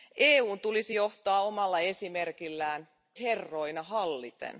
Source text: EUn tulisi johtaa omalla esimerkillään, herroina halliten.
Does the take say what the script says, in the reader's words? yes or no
yes